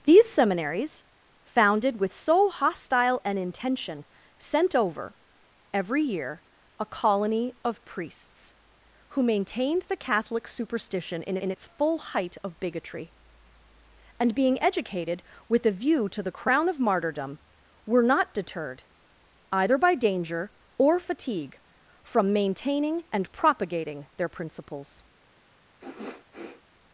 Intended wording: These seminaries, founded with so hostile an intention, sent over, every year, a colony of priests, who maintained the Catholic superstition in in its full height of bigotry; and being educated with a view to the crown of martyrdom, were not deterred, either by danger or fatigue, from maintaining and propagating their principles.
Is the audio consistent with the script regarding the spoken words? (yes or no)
yes